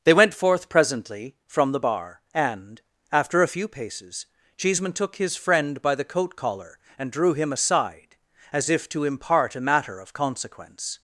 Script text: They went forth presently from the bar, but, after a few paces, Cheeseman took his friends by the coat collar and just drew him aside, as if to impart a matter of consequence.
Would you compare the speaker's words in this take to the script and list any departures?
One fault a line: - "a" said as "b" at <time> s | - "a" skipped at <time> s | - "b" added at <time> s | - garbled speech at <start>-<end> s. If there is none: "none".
- "but" said as "and" at 2.3 s
- "friends" said as "friend" at 5.3 s
- "just" skipped at 7.1 s